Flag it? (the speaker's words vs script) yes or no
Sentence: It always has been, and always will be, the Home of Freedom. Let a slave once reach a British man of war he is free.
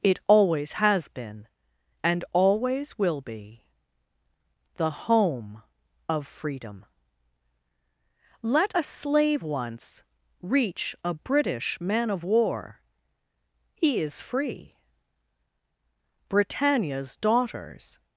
yes